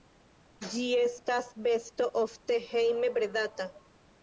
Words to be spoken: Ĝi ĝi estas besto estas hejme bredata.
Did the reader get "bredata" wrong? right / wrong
right